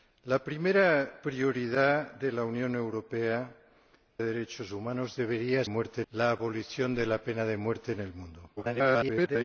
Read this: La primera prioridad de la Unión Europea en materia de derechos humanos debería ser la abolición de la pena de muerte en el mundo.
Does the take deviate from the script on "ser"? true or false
true